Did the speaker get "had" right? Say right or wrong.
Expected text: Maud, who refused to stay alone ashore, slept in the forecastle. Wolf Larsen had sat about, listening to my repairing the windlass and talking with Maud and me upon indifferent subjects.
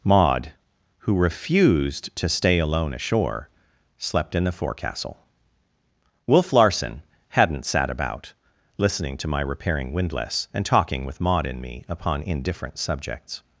wrong